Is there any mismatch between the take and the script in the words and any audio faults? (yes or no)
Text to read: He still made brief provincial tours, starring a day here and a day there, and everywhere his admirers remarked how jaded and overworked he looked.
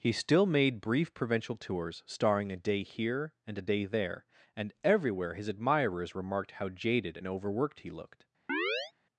yes